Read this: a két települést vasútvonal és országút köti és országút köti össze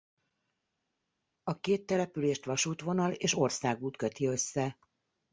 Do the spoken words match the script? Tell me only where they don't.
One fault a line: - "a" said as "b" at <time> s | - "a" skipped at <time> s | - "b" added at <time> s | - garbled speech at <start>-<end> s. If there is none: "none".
- "és országút köti" skipped at 4.3 s